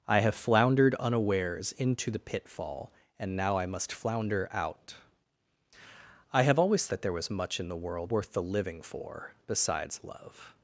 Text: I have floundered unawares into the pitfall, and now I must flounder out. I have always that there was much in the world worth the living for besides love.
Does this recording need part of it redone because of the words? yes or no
no